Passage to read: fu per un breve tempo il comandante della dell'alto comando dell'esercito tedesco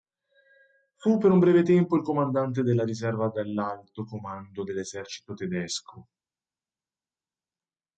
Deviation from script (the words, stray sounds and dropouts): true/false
true